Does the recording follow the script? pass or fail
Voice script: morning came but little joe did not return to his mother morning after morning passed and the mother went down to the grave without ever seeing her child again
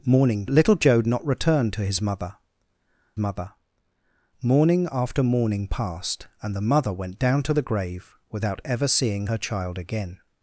fail